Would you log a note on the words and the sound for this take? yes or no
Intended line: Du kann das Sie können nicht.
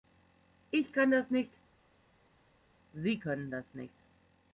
yes